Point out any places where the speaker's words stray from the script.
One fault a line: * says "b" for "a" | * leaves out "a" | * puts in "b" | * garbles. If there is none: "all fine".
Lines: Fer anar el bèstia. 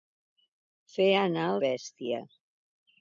all fine